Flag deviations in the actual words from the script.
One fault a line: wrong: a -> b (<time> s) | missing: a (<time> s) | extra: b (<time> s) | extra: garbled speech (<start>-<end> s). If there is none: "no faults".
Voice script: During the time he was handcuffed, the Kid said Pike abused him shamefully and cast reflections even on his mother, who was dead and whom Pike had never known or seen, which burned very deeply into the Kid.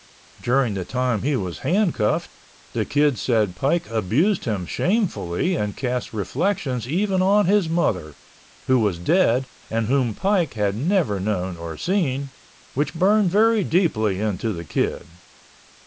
no faults